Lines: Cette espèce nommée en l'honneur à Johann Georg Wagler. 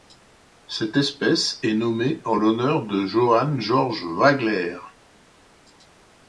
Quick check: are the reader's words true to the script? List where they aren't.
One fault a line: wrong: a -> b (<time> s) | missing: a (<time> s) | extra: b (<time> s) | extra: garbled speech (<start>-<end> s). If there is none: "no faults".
extra: est (1.6 s)
wrong: à -> de (2.8 s)